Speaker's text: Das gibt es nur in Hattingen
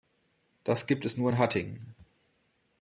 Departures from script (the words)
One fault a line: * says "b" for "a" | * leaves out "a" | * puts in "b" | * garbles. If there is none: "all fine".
all fine